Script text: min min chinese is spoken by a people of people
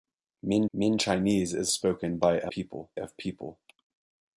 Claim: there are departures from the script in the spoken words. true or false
false